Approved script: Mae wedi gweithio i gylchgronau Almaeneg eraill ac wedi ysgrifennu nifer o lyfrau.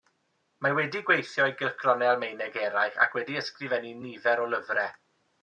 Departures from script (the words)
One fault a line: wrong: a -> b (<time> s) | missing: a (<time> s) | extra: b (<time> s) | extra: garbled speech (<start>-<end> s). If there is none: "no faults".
no faults